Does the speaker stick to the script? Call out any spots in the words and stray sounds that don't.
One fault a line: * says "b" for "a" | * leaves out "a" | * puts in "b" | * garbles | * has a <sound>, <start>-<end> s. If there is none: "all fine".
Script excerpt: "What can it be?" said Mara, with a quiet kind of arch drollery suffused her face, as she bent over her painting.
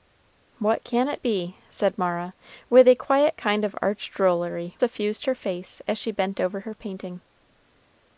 all fine